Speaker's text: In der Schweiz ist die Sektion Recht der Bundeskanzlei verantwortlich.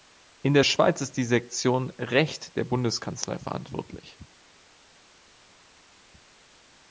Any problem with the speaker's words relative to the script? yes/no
no